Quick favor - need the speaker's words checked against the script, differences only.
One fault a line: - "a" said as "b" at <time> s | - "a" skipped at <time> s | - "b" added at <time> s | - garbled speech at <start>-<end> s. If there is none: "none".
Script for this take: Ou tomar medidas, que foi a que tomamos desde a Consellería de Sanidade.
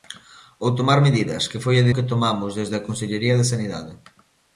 none